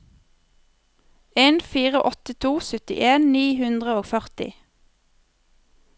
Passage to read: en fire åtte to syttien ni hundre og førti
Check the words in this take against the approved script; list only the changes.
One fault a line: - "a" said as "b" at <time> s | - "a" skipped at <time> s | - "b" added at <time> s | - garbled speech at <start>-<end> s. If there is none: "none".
none